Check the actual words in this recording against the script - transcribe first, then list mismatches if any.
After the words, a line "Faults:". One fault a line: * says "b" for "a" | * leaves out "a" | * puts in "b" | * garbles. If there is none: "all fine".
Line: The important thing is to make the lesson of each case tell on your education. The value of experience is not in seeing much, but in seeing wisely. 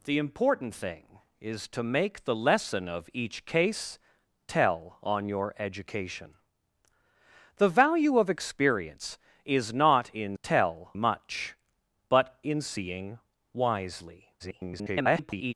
The important thing is to make the lesson of each case tell on your education. The value of experience is not in tell much, but in seeing wisely. [garbled]
Faults:
* says "tell" for "seeing"
* garbles